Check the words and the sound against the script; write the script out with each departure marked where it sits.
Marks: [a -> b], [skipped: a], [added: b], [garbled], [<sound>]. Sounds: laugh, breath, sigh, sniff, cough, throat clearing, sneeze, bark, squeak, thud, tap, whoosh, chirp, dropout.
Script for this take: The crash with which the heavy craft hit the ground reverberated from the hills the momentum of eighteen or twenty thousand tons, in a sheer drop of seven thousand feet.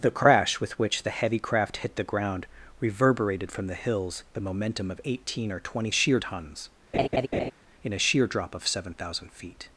The crash with which the heavy craft hit the ground reverberated from the hills the momentum of eighteen or twenty [thousand -> sheer] tons, [laugh] in a sheer drop of seven thousand feet.